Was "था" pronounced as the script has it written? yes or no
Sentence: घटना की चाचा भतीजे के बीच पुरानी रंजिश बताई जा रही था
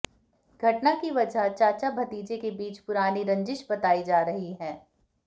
no